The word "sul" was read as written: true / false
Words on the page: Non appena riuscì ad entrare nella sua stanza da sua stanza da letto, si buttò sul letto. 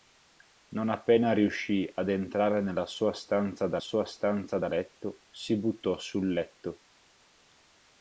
true